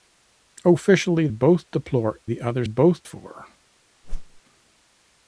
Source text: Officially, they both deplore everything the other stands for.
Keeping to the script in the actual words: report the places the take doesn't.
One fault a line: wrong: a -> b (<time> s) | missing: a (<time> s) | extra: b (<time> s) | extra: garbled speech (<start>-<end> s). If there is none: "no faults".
missing: they (1.3 s)
missing: everything (2.2 s)
wrong: stands -> both (2.6 s)